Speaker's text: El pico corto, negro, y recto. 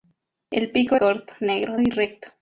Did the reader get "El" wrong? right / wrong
right